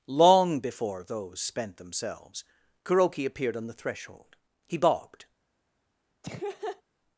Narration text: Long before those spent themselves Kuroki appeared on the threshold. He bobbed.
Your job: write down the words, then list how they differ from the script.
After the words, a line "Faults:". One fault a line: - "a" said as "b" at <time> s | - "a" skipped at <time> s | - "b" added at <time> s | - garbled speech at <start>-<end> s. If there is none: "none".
Long before those spent themselves Kuroki appeared on the threshold. He bobbed.
Faults:
none